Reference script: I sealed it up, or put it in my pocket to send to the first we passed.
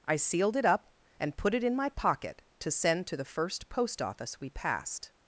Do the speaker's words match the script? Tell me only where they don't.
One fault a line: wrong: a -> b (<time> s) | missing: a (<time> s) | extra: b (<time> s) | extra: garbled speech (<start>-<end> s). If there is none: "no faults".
wrong: or -> and (1.2 s)
extra: post office (3.7 s)